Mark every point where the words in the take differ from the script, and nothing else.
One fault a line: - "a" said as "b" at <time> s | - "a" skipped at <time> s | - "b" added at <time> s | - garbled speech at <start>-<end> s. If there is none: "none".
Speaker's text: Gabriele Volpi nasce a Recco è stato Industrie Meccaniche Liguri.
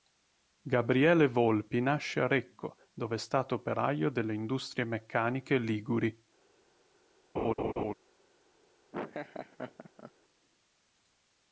- "dove" added at 2.9 s
- "operaio delle" added at 3.5 s